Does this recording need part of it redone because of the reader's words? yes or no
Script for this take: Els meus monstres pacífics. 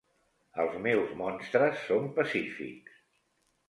yes